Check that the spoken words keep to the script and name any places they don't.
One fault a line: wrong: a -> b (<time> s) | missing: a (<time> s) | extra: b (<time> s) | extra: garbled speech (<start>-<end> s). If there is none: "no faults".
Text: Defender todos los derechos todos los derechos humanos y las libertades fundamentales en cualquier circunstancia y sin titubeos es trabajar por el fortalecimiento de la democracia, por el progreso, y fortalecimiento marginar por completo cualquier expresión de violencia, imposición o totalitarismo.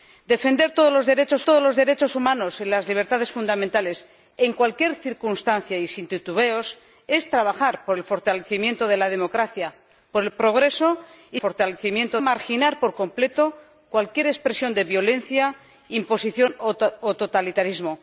no faults